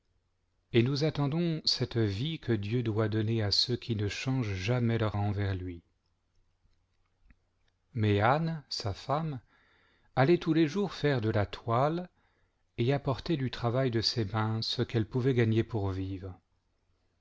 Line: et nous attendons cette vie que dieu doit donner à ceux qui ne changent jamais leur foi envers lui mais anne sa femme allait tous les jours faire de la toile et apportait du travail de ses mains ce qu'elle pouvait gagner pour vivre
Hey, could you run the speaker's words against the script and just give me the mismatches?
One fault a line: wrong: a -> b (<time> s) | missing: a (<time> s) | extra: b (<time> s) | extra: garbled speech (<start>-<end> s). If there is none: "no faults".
missing: foi (5.2 s)